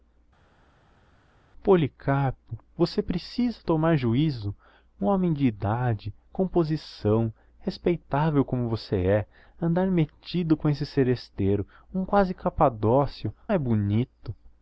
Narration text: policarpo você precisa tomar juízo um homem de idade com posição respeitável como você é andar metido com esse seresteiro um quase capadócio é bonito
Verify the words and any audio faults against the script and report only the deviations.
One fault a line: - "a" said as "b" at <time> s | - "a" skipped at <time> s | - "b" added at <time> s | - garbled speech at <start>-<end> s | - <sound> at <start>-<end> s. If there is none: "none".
none